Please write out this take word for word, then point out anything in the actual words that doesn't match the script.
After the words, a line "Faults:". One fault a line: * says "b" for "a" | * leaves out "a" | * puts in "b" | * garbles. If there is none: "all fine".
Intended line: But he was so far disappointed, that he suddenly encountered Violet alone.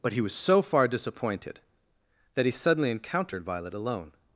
But he was so far disappointed, that he suddenly encountered Violet alone.
Faults:
all fine